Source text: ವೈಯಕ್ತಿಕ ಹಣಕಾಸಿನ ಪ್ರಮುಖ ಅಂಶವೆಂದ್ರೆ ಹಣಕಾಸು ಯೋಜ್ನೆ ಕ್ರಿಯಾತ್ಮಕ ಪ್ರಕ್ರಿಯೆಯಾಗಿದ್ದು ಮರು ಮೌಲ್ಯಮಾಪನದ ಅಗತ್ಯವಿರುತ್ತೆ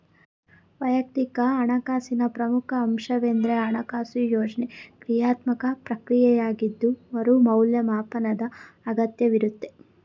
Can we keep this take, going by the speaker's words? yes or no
yes